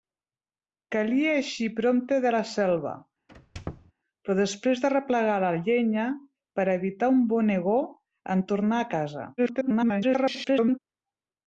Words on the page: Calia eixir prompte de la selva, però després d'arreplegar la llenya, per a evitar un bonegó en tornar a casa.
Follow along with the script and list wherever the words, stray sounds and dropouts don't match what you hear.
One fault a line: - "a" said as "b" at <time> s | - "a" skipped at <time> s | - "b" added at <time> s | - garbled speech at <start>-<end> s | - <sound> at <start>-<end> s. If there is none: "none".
- squeak at 3.3-3.9 s
- garbled speech at 9.4-10.8 s